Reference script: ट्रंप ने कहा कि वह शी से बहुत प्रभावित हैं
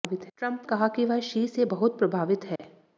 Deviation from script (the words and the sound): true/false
true